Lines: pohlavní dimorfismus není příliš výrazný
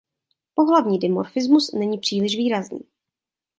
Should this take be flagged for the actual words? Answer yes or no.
no